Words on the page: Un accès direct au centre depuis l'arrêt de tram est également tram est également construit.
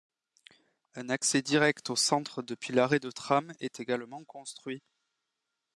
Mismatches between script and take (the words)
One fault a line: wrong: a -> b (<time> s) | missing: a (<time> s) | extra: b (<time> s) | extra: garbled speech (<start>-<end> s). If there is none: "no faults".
missing: tram est également (4.2 s)